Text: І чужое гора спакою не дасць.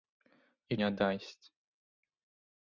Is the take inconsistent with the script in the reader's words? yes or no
yes